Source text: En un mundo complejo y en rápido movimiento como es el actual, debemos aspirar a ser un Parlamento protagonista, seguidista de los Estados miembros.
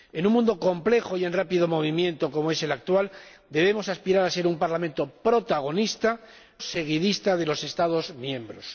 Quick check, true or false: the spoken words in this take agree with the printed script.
true